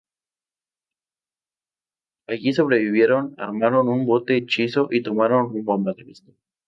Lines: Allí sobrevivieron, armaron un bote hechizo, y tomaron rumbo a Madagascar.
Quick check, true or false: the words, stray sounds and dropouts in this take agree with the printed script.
true